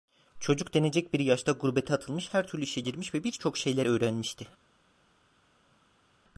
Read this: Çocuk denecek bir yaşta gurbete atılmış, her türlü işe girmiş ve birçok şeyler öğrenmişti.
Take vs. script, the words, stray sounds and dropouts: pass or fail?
pass